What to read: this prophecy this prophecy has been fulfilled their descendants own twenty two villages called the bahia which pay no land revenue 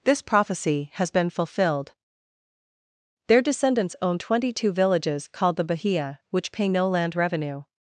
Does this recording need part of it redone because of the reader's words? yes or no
yes